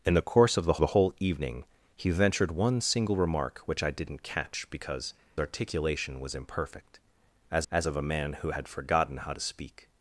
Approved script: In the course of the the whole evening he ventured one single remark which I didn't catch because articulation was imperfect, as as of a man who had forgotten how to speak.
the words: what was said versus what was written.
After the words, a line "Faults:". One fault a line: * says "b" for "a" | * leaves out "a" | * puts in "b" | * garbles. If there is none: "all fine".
In the course of the the whole evening he ventured one single remark which I didn't catch because articulation was imperfect, as as of a man who had forgotten how to speak.
Faults:
all fine